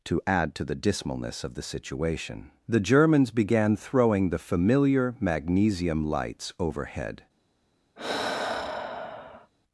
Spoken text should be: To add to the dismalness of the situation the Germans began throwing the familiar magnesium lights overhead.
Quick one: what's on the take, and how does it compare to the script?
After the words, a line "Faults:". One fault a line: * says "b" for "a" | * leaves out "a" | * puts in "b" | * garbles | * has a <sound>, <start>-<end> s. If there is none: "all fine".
To add to the dismalness of the situation the Germans began throwing the familiar magnesium lights overhead.
Faults:
* has a sigh, 8.0-9.5 s